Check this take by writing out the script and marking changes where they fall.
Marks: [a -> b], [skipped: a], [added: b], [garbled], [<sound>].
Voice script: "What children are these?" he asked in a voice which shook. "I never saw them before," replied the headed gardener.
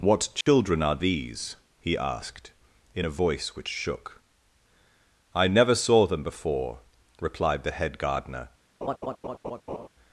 "What children [dropout] are these?" he asked in a voice which shook. "I never saw them before," replied the [headed -> head] gardener. [laugh]